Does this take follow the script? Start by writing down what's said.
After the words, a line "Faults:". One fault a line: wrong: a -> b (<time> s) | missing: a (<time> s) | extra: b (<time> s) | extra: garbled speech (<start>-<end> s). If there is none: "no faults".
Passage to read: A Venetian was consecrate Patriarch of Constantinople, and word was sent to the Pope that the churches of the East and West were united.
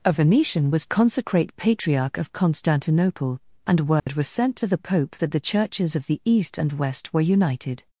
A Venetian was consecrate Patriarch of Constantinople, and word was sent to the Pope that the churches of the East and West were united.
Faults:
no faults